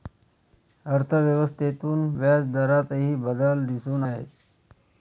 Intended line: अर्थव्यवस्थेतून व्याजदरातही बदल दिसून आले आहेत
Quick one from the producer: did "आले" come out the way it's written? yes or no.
no